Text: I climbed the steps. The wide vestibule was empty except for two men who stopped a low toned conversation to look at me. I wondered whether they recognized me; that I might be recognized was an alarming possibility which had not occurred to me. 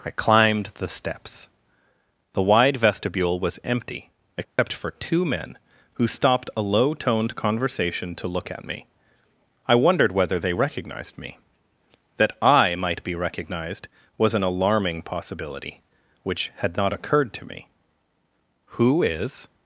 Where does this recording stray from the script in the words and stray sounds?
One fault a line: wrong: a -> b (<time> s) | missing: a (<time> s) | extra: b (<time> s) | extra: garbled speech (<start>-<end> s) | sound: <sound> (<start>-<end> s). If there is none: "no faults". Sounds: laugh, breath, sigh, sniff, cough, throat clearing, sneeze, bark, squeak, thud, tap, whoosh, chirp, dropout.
sound: dropout (4.4-4.6 s)
extra: Who is (18.8 s)